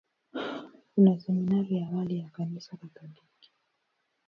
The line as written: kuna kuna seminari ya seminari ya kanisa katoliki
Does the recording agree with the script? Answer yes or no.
no